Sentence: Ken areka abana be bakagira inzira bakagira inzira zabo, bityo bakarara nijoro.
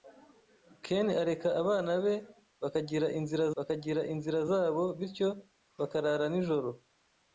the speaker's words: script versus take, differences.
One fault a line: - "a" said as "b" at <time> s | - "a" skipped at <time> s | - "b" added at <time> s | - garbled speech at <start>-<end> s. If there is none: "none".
none